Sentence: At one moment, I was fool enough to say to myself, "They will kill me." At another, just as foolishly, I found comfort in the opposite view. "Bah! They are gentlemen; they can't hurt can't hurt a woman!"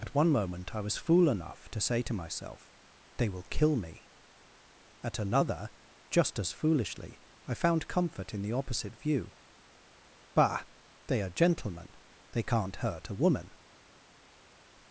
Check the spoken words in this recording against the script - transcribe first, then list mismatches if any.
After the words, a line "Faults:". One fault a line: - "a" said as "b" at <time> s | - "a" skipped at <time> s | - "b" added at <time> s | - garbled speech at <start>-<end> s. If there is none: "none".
At one moment, I was fool enough to say to myself, "They will kill me." At another, just as foolishly, I found comfort in the opposite view. "Bah! They are gentlemen; they can't hurt a woman!"
Faults:
- "can't hurt" skipped at 13.1 s